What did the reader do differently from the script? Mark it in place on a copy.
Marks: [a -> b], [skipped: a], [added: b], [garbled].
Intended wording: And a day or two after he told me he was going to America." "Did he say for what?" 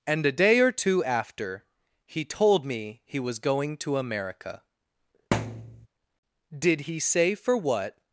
And a day or two after he told me he was going to America." "Did he say for what?"